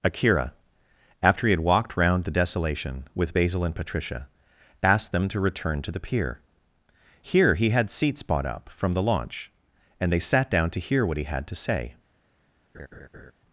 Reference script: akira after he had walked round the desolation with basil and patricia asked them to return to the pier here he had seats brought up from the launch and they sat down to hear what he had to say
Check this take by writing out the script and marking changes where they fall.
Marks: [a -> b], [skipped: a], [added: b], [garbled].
akira after he had walked round the desolation with basil and patricia asked them to return to the pier here he had seats [brought -> bought] up from the launch and they sat down to hear what he had to say